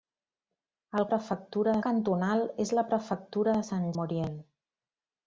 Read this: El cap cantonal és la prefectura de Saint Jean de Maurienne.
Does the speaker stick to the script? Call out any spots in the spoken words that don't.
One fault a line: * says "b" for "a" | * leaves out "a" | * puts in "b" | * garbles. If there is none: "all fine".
* says "prefectura" for "cap"
* leaves out "Jean de"